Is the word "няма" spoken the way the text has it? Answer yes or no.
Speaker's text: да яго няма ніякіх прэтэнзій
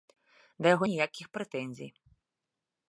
no